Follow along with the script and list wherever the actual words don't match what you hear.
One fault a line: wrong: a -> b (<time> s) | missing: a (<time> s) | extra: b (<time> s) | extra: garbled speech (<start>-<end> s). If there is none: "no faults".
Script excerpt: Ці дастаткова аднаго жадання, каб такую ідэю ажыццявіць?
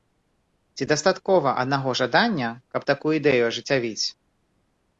no faults